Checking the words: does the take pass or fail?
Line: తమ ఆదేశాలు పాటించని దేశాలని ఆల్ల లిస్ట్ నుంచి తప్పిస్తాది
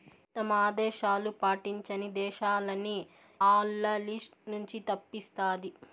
pass